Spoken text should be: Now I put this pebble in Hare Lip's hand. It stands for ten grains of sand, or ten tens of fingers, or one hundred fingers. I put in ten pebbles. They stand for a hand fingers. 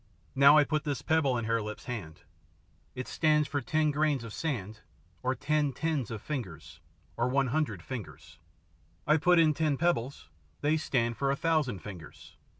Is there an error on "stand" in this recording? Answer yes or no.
no